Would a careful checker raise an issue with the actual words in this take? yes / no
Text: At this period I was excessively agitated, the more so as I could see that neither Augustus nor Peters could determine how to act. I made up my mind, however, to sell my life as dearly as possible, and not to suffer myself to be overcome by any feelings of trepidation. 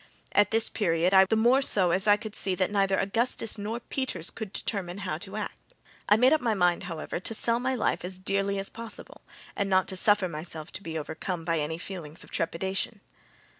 yes